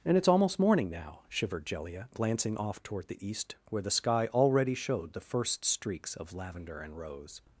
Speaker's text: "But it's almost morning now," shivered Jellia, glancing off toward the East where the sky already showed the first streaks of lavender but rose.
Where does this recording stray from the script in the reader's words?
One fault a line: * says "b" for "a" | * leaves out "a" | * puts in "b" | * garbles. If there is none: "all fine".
* says "And" for "But"
* says "and" for "but"